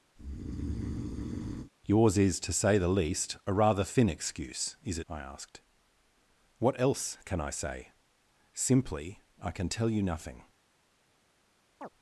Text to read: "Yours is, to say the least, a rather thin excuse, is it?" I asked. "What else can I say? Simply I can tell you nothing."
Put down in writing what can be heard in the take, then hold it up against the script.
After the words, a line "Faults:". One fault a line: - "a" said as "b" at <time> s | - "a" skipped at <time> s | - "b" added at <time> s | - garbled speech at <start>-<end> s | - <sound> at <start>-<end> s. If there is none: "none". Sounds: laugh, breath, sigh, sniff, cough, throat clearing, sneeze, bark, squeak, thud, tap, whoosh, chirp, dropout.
"Yours is, to say the least, a rather thin excuse, is it?" I asked. "What else can I say? Simply I can tell you nothing."
Faults:
- breath at 0.2-1.7 s
- chirp at 11.8-11.9 s